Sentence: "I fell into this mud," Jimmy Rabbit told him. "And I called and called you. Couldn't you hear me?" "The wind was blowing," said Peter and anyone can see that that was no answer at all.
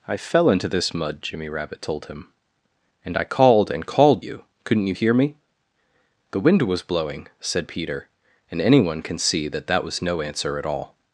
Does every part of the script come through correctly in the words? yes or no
yes